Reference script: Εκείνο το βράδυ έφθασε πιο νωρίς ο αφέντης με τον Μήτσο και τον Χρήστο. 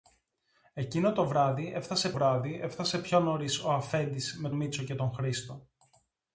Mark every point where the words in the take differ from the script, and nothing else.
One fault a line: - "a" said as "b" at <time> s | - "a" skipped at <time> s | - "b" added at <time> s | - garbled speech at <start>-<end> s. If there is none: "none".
- "βράδυ έφθασε" added at 2.1 s
- "τον" skipped at 4.5 s